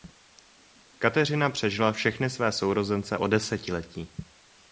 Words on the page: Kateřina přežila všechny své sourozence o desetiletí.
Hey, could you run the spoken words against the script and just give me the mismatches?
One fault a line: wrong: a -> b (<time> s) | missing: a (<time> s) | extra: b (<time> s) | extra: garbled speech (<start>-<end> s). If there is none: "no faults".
no faults